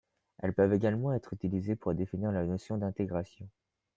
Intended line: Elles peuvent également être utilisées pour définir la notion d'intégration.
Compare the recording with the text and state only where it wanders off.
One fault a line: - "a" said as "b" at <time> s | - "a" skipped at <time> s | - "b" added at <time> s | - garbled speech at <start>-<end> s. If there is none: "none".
none